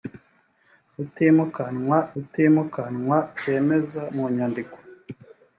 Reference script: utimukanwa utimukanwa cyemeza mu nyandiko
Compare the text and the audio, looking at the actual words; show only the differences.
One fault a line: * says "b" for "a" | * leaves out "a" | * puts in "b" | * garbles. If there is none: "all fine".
all fine